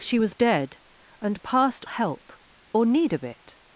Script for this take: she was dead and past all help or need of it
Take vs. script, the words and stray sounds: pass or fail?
fail